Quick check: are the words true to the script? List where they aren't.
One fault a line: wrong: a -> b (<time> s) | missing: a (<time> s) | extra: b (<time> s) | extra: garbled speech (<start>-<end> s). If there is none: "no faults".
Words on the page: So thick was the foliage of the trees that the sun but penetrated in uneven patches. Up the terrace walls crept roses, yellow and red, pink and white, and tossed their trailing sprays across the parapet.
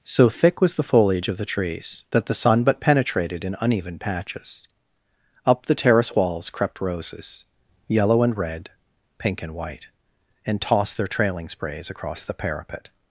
no faults